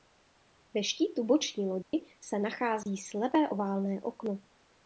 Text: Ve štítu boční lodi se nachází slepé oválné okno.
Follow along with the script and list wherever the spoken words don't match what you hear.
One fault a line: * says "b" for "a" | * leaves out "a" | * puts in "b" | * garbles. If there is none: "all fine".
all fine